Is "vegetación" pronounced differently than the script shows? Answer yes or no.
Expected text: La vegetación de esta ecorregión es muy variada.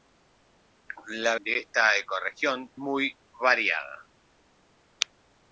yes